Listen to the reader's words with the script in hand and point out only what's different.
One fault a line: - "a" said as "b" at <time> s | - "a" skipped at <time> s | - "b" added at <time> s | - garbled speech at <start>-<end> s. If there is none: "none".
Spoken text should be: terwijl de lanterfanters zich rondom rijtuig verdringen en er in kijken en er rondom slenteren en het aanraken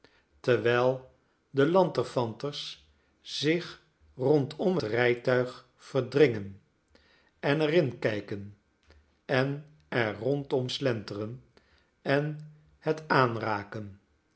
none